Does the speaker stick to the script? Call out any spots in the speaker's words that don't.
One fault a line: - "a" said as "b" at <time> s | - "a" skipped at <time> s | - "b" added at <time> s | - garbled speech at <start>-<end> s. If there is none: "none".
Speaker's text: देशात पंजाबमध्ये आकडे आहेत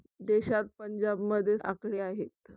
none